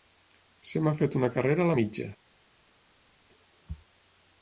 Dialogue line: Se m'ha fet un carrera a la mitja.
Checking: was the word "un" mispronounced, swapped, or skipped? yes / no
yes